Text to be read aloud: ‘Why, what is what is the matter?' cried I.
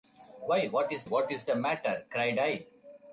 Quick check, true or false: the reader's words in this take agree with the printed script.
true